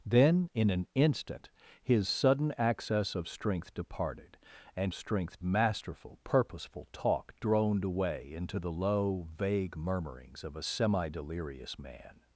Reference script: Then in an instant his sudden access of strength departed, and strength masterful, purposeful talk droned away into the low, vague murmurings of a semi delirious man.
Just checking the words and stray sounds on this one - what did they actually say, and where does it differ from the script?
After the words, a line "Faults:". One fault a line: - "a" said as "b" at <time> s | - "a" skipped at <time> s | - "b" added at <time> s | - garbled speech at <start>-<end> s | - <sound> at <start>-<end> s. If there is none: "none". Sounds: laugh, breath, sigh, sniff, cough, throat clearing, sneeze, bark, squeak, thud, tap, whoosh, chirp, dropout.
Then in an instant his sudden access of strength departed, and strength masterful, purposeful talk droned away into the low, vague murmurings of a semi delirious man.
Faults:
none